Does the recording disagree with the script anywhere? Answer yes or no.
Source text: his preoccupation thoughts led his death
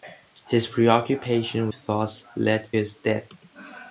no